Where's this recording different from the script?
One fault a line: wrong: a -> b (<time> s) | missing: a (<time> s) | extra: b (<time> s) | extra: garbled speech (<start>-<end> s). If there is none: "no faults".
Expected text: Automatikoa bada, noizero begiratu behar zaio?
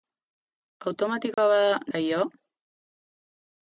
missing: noizero begiratu behar (1.8 s)